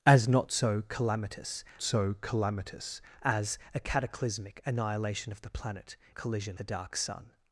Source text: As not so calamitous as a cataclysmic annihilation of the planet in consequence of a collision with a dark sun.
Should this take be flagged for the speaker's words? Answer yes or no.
yes